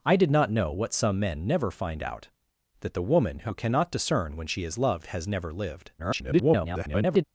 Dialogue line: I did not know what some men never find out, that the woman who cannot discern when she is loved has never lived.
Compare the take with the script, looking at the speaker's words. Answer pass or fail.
fail